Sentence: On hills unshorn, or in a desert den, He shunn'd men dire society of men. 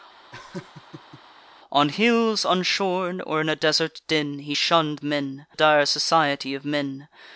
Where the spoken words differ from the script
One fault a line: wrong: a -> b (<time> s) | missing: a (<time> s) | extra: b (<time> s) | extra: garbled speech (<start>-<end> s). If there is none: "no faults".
no faults